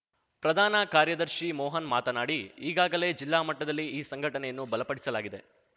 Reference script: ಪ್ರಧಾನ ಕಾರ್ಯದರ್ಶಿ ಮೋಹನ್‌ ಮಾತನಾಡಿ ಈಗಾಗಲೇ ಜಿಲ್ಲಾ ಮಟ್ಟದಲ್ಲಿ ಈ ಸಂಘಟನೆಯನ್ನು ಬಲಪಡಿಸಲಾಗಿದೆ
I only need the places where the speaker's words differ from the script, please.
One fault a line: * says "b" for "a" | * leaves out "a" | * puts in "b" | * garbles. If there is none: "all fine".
all fine